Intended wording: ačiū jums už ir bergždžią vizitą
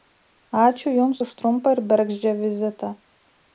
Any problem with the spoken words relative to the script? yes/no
yes